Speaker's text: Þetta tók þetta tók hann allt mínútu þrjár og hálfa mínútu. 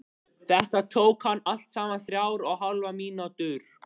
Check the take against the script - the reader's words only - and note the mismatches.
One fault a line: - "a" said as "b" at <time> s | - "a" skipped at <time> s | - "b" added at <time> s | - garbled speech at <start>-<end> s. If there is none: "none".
- "þetta tók" skipped at 1.3 s
- "mínútu" said as "saman" at 1.8 s